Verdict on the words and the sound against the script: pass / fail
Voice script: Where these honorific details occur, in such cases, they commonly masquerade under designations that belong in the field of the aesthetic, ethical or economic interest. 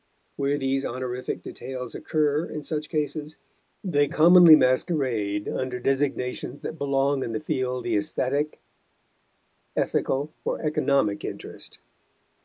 fail